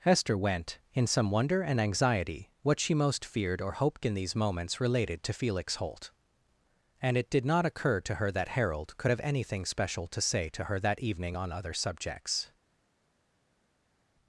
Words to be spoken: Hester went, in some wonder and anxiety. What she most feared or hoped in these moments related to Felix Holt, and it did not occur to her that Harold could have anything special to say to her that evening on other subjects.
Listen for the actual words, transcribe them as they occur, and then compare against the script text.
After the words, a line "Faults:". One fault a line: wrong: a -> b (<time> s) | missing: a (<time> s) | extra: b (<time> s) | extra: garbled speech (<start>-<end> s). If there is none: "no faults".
Hester went, in some wonder and anxiety. What she most feared or hoped in these moments related to Felix Holt, and it did not occur to her that Harold could have anything special to say to her that evening on other subjects.
Faults:
no faults